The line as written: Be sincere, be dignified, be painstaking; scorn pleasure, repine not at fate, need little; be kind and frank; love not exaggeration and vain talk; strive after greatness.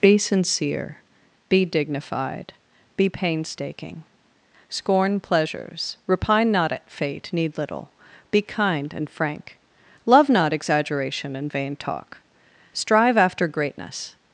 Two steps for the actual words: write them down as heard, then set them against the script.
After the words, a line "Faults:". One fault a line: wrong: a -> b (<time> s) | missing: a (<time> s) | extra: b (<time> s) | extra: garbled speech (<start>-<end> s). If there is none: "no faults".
Be sincere, be dignified, be painstaking; scorn pleasures, repine not at fate, need little; be kind and frank; love not exaggeration and vain talk; strive after greatness.
Faults:
wrong: pleasure -> pleasures (5.2 s)